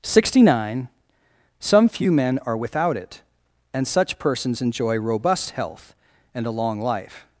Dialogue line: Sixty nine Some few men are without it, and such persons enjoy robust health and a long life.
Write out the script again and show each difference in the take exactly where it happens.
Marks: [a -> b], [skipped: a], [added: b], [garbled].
Sixty nine Some few men are without it, and such persons enjoy robust health and a long life.